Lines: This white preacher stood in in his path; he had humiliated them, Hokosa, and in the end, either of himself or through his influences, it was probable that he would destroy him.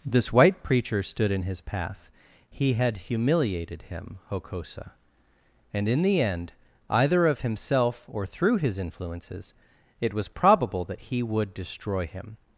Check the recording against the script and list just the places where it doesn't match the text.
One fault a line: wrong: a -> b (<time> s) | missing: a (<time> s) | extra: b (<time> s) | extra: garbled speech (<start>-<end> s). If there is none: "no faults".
missing: in (1.4 s)
wrong: them -> him (3.8 s)